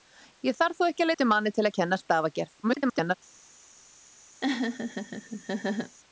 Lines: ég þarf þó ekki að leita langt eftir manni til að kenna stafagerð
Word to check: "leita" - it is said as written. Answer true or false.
false